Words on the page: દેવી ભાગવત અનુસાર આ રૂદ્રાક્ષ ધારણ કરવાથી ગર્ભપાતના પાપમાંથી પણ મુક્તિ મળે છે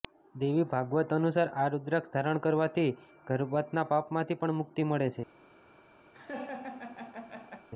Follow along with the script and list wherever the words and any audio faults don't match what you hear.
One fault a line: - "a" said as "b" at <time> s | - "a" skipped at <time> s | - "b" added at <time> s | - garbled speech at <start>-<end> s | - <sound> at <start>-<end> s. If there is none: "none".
- laugh at 6.1-7.7 s